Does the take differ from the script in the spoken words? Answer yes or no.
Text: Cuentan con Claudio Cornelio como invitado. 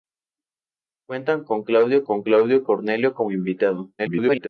yes